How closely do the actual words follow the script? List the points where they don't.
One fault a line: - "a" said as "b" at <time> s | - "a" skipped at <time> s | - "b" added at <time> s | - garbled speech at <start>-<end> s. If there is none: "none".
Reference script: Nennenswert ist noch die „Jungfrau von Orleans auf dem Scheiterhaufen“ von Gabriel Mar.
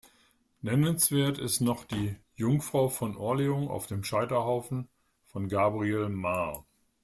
none